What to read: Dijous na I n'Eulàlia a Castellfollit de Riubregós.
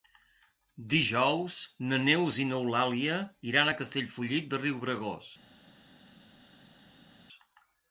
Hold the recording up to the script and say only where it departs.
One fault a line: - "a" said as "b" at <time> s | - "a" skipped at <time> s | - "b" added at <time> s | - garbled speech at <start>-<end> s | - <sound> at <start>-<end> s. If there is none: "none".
- "Neus" added at 2.0 s
- "iran" added at 3.5 s